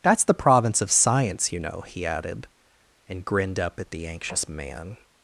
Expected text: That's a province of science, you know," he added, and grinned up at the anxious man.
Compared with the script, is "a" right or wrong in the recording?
wrong